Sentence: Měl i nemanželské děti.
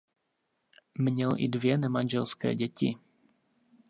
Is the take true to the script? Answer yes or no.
no